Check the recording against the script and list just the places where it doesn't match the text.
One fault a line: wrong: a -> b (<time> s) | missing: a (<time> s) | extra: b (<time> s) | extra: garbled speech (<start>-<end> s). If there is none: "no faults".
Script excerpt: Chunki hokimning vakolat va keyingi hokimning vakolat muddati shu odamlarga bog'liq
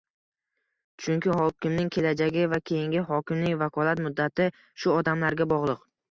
wrong: vakolat -> kelajagi (2.0 s)